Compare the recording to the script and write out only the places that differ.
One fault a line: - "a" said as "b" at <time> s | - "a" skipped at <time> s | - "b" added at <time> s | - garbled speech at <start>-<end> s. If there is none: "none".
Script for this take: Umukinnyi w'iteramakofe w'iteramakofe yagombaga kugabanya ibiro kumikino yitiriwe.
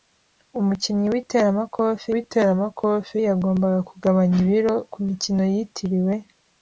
none